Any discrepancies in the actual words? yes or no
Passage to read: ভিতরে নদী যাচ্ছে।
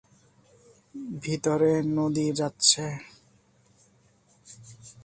no